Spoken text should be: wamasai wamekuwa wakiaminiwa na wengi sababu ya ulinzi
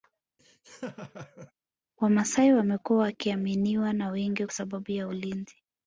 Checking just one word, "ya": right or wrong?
right